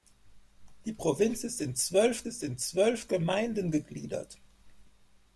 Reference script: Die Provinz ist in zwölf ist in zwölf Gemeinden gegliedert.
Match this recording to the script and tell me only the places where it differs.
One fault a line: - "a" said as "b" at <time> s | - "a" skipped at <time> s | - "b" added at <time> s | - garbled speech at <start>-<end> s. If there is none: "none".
none